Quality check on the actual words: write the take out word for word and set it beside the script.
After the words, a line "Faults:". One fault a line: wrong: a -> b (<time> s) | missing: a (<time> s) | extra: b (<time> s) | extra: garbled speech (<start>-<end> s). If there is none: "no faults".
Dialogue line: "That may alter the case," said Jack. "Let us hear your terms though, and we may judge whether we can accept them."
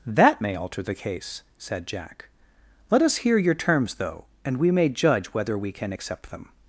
"That may alter the case," said Jack. "Let us hear your terms though, and we may judge whether we can accept them."
Faults:
no faults